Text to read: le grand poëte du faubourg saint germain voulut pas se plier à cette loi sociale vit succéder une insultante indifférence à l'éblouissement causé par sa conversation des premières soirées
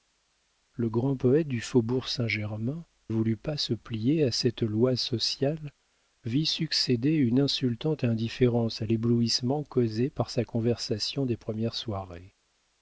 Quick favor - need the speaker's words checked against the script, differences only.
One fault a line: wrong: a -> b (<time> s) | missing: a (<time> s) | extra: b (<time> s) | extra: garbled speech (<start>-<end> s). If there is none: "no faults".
no faults